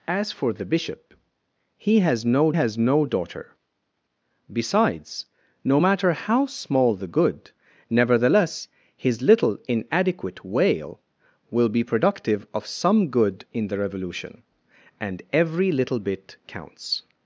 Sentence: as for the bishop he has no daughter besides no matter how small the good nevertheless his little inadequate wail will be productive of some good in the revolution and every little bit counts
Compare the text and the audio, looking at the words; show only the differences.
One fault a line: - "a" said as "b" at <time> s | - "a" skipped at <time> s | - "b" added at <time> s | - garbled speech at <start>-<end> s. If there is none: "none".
- "has no" added at 2.5 s